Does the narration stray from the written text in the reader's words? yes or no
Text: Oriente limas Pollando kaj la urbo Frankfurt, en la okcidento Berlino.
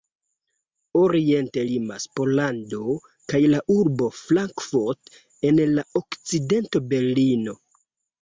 no